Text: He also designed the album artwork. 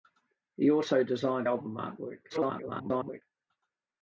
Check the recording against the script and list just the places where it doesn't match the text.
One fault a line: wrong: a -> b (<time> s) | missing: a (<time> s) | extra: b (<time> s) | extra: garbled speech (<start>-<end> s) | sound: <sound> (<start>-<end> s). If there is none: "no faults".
missing: the (1.5 s)
extra: garbled speech (2.3-3.2 s)